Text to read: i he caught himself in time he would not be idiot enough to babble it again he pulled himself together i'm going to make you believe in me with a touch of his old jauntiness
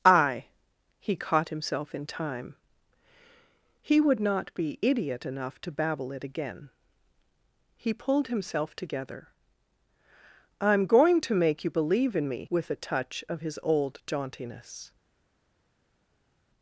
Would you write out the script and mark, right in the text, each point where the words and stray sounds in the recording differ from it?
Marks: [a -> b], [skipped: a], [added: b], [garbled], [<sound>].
i he caught himself in time he would not be idiot enough to babble it again he pulled himself together i'm going to make you believe in me with a touch of his old jauntiness